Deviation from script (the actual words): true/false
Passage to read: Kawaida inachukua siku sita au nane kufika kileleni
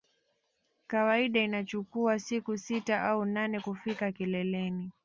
false